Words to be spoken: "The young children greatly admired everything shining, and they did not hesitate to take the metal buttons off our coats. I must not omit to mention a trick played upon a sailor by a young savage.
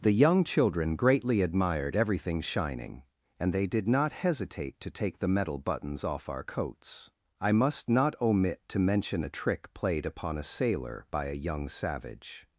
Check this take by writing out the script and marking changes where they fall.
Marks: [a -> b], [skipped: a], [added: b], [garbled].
"The young children greatly admired everything shining, and they did not hesitate to take the metal buttons off our coats. I must not omit to mention a trick played upon a sailor by a young savage.